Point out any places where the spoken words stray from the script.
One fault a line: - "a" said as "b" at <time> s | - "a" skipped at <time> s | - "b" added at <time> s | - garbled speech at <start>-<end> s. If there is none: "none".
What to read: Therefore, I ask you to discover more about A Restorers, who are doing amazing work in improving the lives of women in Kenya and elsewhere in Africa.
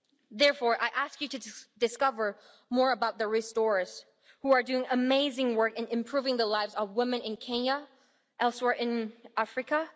- "A" said as "The" at 3.2 s